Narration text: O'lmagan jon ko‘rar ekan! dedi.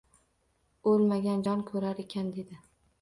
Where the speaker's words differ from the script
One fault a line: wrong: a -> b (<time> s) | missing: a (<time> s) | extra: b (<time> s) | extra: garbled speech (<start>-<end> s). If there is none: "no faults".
no faults